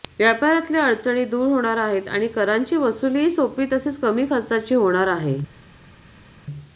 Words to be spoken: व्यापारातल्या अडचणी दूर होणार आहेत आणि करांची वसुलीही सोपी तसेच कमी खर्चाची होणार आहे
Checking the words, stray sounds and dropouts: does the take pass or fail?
pass